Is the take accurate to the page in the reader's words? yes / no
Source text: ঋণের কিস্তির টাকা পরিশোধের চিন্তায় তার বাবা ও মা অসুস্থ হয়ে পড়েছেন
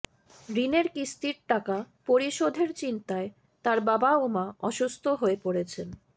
yes